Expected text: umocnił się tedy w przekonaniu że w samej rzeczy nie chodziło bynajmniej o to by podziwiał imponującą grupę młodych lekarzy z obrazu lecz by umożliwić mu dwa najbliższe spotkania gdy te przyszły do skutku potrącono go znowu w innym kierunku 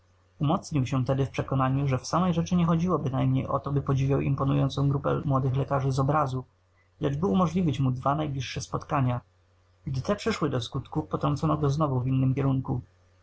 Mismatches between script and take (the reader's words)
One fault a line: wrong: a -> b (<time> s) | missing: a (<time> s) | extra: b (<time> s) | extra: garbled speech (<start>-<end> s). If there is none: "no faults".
no faults